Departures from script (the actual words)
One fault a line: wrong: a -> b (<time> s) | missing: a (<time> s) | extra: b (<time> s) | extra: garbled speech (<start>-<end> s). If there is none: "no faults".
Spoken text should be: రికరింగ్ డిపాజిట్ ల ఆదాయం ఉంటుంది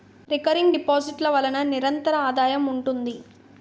extra: వలన నిరంతర (1.3 s)